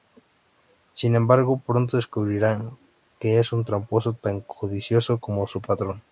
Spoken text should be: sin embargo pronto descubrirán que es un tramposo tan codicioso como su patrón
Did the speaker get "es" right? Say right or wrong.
right